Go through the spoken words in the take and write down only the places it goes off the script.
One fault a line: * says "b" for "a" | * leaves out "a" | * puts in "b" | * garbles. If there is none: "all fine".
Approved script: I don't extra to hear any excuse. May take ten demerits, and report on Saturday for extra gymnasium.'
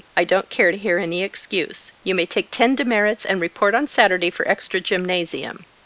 * says "care" for "extra"
* puts in "You"